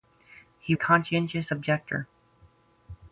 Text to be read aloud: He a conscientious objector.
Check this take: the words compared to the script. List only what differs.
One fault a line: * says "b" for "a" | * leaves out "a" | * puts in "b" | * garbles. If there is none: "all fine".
all fine